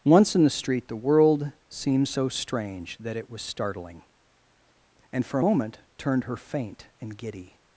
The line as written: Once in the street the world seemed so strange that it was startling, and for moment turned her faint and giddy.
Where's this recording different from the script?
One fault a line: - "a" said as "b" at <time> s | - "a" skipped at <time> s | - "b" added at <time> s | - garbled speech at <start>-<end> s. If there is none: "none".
none